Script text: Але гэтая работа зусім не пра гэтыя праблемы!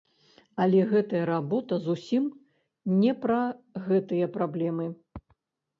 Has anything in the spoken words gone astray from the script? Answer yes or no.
no